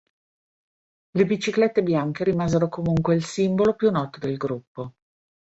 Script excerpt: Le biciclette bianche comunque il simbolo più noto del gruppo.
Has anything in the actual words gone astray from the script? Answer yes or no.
yes